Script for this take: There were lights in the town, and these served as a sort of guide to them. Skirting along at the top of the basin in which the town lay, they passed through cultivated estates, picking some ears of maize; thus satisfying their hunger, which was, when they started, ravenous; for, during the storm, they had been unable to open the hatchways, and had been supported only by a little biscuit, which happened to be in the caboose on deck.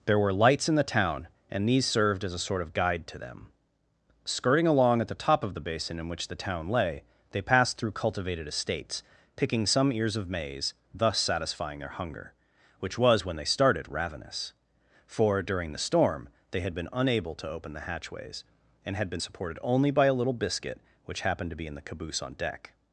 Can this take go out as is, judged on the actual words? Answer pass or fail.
pass